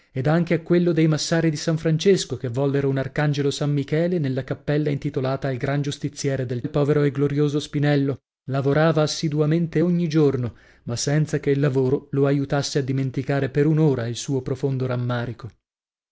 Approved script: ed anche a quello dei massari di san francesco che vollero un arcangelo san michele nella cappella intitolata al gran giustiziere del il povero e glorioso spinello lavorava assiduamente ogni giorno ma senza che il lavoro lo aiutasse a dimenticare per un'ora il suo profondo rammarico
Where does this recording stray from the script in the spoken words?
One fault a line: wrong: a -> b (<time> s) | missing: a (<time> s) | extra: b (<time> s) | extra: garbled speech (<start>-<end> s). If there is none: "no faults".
no faults